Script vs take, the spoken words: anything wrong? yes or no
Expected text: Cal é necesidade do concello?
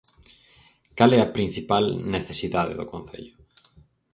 yes